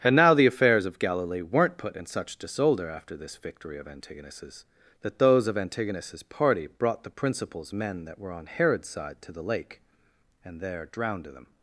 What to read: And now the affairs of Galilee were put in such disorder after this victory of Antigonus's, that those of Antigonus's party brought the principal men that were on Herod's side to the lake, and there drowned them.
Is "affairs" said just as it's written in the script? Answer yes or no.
yes